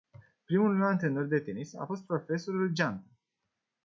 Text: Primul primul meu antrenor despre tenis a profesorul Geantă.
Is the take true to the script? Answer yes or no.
no